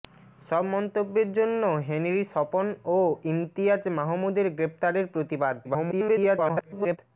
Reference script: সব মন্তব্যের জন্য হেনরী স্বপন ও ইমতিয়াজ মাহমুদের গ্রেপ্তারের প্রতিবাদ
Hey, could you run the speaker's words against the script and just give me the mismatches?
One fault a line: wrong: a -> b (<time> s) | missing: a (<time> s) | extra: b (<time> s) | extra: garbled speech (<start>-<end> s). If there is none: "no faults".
extra: garbled speech (5.6-7.0 s)